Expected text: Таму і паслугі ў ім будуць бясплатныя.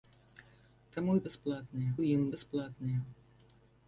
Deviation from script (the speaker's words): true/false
true